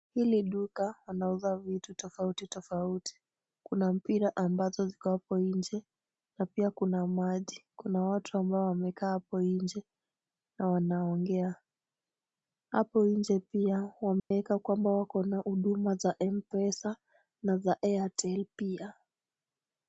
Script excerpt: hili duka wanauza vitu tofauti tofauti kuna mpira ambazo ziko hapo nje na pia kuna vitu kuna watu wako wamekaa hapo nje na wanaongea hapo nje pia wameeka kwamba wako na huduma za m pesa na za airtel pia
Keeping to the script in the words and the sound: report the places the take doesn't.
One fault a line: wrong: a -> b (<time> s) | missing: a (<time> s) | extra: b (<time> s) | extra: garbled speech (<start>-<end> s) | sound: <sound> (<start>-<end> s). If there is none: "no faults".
wrong: vitu -> maji (7.1 s)
wrong: wako -> ambao (8.4 s)
sound: dropout (14.2-14.3 s)